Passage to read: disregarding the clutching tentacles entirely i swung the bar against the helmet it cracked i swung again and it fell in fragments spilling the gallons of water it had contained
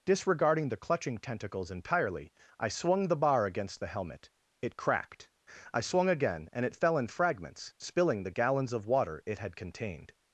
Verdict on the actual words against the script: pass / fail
pass